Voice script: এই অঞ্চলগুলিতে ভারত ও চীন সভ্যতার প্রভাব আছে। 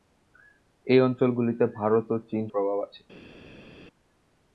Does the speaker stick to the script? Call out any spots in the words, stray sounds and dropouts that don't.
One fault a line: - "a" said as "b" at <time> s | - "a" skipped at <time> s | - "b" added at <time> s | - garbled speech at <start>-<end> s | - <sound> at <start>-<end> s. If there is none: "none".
- "সভ্যতার" skipped at 2.4 s